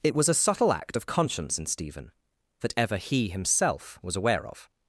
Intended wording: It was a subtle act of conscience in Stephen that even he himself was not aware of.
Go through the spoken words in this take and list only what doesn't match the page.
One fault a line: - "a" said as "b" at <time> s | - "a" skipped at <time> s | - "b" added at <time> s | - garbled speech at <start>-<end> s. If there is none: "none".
- "even" said as "ever" at 2.8 s
- "not" skipped at 4.2 s